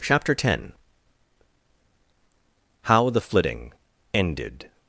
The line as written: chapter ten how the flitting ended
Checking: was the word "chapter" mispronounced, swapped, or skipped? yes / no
no